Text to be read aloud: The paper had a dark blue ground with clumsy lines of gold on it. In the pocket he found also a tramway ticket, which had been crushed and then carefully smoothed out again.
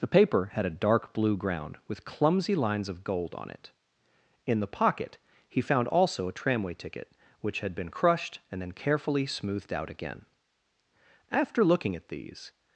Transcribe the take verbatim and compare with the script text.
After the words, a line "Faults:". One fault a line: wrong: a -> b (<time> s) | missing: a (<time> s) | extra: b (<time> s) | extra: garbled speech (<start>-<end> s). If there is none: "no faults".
The paper had a dark blue ground with clumsy lines of gold on it. In the pocket he found also a tramway ticket, which had been crushed and then carefully smoothed out again. After looking at these
Faults:
extra: After looking at these (11.3 s)